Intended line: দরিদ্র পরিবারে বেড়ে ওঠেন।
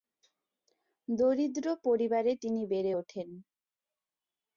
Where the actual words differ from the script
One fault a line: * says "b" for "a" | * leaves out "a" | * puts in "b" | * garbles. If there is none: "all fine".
* puts in "তিনি"